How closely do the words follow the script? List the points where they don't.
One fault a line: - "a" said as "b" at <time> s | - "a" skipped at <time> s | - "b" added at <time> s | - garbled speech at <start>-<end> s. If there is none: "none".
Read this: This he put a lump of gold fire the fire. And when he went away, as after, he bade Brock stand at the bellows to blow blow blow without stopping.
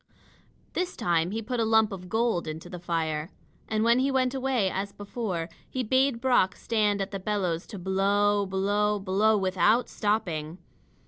- "time" added at 0.9 s
- "fire" said as "into" at 2.5 s
- "after" said as "before" at 4.9 s